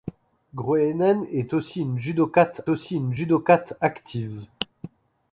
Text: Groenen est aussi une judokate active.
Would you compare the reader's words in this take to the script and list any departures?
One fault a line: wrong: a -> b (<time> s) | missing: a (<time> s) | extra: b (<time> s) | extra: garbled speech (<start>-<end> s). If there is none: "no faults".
extra: aussi une judokate (2.7 s)